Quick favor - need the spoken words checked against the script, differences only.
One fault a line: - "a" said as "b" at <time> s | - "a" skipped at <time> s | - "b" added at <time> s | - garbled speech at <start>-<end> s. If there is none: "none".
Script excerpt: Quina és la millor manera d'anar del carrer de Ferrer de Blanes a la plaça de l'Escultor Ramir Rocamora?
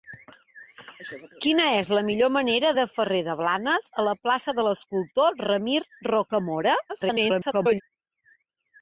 - "d'anar del carrer" skipped at 2.7 s
- garbled speech at 6.9-7.8 s